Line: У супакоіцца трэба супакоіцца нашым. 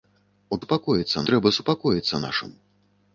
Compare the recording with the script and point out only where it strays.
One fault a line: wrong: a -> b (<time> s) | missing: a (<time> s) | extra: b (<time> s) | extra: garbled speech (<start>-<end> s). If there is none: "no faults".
no faults